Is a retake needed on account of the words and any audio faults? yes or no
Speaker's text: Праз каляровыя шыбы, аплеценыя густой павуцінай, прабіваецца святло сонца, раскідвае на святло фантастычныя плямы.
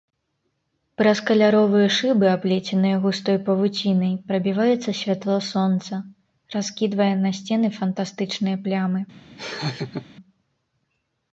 yes